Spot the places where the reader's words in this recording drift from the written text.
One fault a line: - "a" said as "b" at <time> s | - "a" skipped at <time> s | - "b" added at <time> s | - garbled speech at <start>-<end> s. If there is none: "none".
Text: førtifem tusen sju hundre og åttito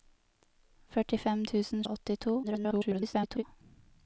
- "sju hundre" skipped at 1.8 s
- garbled speech at 2.4-3.4 s